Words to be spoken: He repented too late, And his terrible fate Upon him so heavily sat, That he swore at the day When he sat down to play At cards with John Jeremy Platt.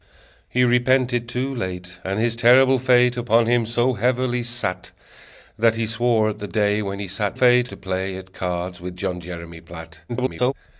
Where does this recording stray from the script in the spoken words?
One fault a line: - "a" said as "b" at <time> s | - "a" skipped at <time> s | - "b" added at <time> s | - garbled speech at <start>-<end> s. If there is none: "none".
- "down" said as "fate" at 7.3 s
- garbled speech at 10.1-10.5 s